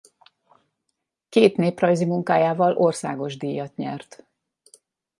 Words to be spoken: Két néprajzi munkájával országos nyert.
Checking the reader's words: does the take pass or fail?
fail